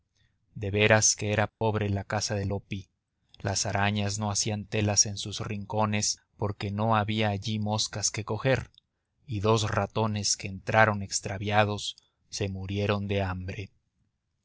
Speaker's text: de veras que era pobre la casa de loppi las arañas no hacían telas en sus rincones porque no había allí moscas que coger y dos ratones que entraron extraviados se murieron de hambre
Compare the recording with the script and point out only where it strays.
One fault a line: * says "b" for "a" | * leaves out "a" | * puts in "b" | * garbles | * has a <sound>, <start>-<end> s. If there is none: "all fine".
* has a dropout, 1.5-1.6 s